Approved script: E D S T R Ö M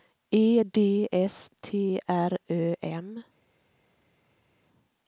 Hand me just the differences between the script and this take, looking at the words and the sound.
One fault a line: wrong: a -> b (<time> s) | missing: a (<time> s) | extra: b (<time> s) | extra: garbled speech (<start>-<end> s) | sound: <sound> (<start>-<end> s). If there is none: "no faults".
no faults